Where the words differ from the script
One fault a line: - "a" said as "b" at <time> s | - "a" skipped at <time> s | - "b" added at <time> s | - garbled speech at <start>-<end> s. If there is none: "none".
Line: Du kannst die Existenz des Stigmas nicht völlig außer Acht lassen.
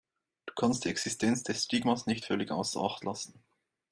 none